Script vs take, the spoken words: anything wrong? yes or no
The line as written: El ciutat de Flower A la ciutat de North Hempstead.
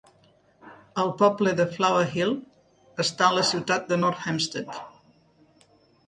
yes